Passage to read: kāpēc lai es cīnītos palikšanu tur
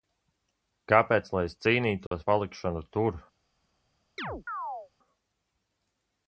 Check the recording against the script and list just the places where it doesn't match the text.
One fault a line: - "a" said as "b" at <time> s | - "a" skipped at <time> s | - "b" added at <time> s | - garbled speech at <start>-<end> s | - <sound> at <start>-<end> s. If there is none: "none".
- dropout at 2.1-2.1 s
- chirp at 4.2-4.9 s